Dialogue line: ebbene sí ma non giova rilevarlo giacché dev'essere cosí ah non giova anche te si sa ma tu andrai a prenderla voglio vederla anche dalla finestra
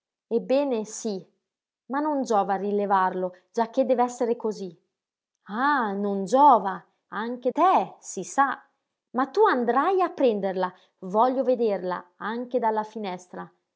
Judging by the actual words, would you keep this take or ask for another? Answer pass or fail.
pass